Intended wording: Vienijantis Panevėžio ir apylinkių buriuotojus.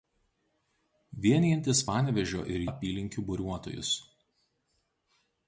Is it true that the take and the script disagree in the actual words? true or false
false